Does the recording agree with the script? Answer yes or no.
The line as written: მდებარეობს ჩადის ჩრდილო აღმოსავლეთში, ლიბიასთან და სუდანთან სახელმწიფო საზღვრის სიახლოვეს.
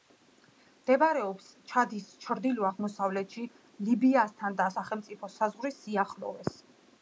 no